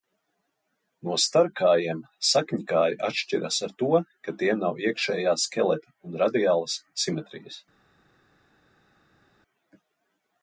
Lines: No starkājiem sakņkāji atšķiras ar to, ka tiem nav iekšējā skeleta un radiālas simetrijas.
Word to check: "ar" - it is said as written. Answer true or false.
true